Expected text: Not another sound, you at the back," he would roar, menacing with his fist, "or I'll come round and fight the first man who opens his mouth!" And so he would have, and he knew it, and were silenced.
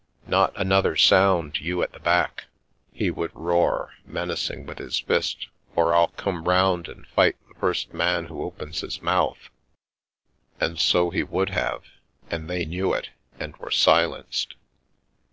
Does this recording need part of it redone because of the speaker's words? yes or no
yes